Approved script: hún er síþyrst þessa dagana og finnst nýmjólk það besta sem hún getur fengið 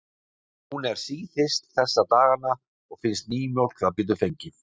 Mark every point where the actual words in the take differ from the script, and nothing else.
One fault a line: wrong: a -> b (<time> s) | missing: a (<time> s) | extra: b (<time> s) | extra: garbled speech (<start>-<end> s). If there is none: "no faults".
missing: besta sem hún (4.0 s)